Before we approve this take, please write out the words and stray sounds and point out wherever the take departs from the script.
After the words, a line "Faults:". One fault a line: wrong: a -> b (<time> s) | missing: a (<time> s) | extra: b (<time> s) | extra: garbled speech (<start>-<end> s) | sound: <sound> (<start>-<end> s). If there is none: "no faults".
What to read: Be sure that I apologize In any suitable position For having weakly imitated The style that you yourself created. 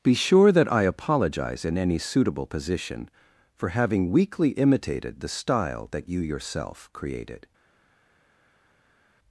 Be sure that I apologize In any suitable position For having weakly imitated The style that you yourself created.
Faults:
no faults